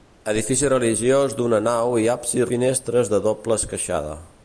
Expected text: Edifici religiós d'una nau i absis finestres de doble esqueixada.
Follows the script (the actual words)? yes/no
yes